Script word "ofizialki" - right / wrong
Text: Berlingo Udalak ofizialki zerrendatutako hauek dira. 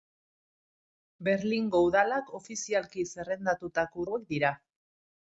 right